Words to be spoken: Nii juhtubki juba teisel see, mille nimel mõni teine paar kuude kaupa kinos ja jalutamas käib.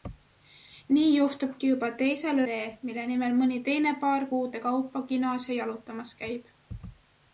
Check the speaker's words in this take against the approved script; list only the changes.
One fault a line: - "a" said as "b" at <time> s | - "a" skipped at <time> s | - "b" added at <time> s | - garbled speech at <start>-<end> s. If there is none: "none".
none